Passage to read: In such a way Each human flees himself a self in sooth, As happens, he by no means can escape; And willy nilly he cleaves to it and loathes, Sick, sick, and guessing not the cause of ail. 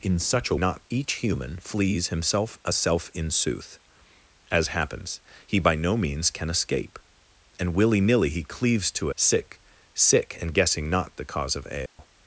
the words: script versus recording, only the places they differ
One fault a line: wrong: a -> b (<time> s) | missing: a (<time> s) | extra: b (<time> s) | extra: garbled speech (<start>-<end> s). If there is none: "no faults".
wrong: way -> not (0.6 s)
missing: it and loathes (9.1 s)